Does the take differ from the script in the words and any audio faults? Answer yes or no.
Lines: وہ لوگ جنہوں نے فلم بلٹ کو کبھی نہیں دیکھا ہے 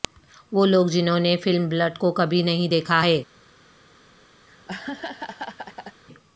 yes